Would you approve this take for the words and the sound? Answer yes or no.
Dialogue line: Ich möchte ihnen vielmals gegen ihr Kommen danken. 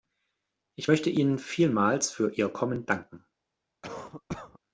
no